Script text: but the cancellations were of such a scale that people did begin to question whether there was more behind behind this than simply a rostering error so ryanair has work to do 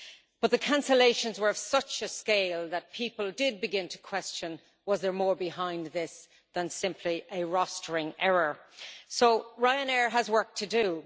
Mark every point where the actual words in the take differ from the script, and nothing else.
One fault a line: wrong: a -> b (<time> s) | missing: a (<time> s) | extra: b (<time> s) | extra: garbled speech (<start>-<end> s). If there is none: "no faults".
missing: behind (5.9 s)